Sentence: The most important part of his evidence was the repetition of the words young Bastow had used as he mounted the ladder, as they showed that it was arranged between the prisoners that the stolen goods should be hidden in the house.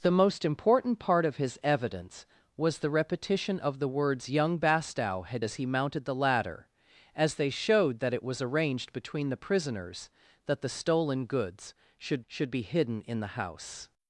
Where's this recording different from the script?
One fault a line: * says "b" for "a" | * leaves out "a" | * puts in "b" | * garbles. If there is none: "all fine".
* leaves out "used"
* puts in "should"